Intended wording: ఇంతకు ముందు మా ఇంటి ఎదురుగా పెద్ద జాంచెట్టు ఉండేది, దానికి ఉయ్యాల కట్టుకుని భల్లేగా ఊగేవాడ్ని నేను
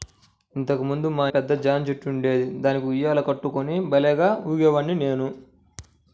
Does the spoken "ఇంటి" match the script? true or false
false